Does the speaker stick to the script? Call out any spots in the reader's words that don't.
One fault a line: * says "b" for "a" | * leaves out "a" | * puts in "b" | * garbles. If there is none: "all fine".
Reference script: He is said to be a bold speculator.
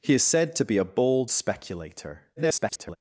* garbles